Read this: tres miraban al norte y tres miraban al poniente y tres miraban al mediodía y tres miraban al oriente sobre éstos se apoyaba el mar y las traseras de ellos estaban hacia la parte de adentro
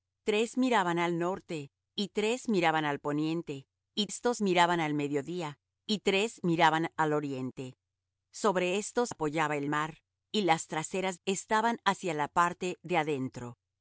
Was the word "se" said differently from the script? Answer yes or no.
yes